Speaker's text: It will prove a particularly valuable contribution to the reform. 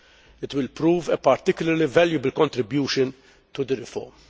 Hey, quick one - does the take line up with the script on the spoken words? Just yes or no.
yes